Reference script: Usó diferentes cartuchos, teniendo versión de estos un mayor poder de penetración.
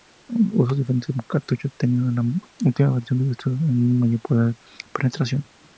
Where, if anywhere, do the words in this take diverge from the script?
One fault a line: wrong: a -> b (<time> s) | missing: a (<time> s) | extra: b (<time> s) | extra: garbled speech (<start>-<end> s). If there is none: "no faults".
extra: la última (2.1 s)